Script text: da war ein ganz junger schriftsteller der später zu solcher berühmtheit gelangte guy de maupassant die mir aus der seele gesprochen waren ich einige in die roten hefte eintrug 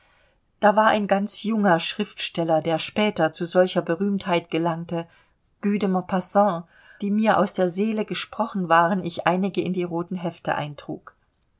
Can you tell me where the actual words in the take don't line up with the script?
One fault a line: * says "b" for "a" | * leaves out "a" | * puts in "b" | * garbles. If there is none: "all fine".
all fine